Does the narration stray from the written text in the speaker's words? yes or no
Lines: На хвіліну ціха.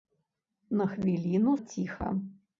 no